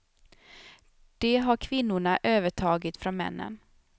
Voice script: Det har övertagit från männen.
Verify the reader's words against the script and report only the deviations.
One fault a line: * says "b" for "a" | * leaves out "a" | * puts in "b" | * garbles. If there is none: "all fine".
* puts in "kvinnorna"